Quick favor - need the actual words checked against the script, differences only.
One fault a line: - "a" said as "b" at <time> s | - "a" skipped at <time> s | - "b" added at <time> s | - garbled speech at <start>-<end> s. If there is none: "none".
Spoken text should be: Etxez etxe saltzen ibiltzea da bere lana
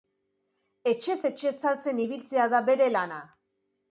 none